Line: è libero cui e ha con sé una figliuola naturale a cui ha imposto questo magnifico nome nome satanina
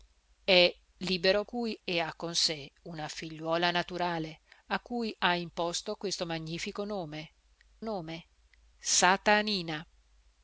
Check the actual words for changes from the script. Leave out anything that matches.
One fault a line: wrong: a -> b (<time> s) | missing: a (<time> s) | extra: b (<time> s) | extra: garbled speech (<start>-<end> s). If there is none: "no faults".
no faults